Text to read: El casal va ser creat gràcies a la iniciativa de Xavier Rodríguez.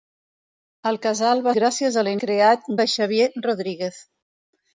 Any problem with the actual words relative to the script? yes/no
yes